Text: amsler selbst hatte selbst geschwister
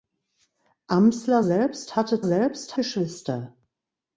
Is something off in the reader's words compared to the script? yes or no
no